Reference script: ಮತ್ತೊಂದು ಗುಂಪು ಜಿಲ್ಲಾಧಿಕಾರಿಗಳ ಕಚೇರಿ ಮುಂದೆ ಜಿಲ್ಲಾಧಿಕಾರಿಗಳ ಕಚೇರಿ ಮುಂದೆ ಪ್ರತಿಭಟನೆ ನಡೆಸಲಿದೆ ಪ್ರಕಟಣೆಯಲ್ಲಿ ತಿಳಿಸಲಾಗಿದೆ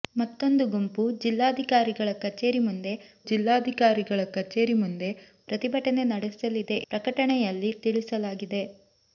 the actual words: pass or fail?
pass